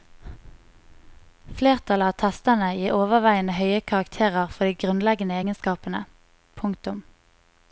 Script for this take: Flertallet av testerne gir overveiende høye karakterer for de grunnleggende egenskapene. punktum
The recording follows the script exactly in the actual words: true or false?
true